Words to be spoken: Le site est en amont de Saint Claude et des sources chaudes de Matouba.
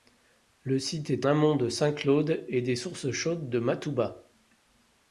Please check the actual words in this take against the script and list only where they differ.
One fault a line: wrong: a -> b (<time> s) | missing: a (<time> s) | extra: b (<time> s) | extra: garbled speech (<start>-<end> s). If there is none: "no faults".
missing: en (1.3 s)